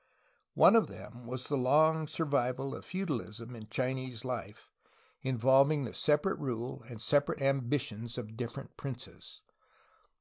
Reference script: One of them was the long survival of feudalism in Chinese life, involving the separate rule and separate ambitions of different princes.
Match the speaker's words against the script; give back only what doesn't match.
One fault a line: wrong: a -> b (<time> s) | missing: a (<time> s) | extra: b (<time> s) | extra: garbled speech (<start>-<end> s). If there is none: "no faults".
no faults